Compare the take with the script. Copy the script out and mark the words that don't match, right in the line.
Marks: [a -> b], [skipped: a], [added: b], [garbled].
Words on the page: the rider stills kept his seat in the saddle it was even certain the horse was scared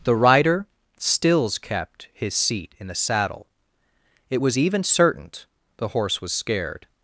the rider stills kept his seat in the saddle it was even certain the horse was scared